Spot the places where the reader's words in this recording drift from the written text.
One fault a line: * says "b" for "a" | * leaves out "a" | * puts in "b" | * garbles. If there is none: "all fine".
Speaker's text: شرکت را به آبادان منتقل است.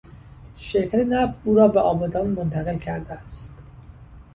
* puts in "نفت او"
* puts in "کرده"